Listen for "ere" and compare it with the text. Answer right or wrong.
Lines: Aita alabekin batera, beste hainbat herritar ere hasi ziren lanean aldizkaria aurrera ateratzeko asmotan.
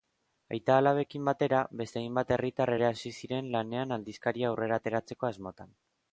right